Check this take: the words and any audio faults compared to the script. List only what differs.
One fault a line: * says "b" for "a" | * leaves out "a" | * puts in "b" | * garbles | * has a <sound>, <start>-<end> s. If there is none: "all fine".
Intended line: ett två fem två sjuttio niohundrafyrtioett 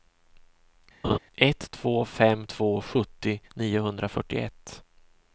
* has a laugh, 1.0-1.2 s